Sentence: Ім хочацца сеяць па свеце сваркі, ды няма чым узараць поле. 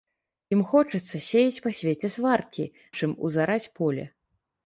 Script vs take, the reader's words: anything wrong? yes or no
yes